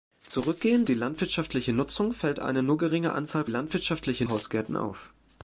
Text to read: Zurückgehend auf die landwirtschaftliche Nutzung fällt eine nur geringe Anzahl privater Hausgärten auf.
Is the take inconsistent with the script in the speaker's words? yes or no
yes